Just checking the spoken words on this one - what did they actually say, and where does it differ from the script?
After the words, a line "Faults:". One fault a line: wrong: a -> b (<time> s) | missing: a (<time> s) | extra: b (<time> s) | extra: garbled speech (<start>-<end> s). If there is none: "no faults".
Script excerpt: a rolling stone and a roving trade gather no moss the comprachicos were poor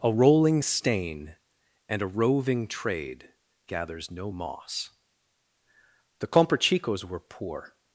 a rolling stain and a roving trade gathers no moss the comprachicos were poor
Faults:
wrong: stone -> stain (0.6 s)
wrong: gather -> gathers (3.6 s)